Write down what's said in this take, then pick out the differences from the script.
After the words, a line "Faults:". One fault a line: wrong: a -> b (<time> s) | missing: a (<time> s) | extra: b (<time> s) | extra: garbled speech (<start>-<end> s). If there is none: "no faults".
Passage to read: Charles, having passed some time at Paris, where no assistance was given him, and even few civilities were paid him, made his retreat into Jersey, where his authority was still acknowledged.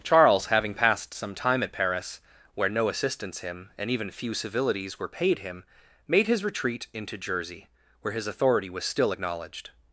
Charles, having passed some time at Paris, where no assistance him, and even few civilities were paid him, made his retreat into Jersey, where his authority was still acknowledged.
Faults:
missing: was given (3.4 s)